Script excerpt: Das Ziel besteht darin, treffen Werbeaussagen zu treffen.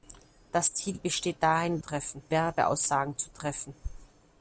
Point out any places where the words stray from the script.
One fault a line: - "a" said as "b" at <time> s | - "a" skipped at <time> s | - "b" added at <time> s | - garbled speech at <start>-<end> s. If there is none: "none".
none